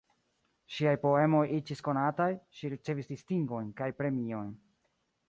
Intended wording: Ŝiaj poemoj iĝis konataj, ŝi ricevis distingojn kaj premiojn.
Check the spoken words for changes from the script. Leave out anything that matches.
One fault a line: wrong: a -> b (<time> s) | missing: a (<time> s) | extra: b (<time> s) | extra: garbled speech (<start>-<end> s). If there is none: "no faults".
no faults